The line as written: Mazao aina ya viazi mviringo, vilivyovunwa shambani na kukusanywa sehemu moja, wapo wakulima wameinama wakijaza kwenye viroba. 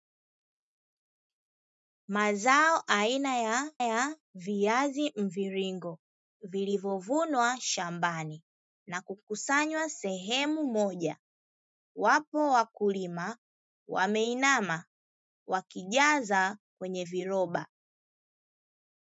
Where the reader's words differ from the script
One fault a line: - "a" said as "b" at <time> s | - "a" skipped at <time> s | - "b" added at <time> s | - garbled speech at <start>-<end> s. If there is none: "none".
- "ya" added at 3.8 s